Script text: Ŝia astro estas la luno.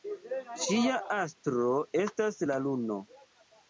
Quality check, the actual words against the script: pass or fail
pass